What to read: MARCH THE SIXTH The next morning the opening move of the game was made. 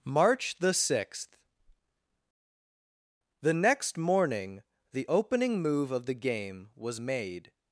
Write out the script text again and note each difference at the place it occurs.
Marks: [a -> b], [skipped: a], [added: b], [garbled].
MARCH THE SIXTH The next morning the opening move of the game was made.